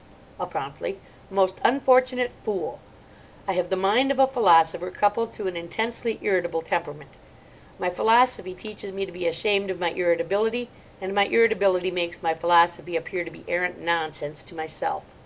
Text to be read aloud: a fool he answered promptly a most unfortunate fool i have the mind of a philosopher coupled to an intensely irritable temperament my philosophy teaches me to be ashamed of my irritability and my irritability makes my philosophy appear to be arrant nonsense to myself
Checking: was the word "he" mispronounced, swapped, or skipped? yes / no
yes